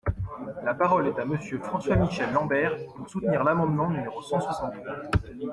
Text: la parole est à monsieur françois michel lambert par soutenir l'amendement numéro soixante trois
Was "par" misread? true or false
true